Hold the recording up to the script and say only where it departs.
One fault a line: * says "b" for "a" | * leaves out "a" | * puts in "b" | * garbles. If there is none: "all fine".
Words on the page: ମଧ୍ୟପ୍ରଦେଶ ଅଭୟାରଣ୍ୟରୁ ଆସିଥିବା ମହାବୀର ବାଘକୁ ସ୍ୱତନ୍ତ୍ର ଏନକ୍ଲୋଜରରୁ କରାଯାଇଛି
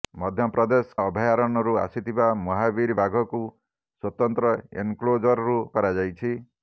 all fine